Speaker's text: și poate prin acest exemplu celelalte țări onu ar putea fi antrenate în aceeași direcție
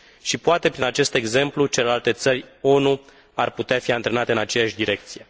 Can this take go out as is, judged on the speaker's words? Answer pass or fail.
pass